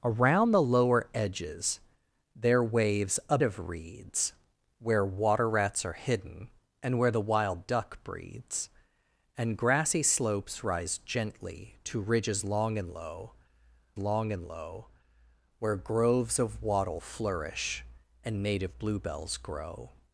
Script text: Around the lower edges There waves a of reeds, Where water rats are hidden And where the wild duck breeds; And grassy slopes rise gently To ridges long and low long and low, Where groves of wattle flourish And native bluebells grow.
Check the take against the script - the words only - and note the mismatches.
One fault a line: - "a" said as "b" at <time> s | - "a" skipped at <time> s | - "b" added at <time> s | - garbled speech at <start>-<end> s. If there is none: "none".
none